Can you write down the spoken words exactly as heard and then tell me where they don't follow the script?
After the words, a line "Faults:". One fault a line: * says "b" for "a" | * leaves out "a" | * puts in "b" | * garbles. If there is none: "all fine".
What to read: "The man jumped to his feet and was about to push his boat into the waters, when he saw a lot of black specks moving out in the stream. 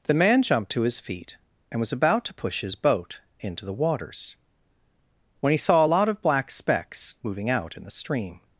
"The man jumped to his feet and was about to push his boat into the waters, when he saw a lot of black specks moving out in the stream.
Faults:
all fine